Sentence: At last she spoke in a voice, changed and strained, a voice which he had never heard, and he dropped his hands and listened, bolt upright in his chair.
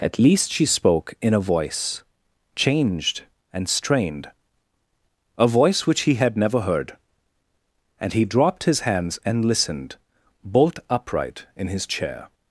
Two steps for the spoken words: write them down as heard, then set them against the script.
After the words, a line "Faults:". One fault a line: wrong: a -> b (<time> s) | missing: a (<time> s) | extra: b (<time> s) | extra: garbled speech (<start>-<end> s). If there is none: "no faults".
At least she spoke in a voice, changed and strained, a voice which he had never heard, and he dropped his hands and listened, bolt upright in his chair.
Faults:
wrong: last -> least (0.2 s)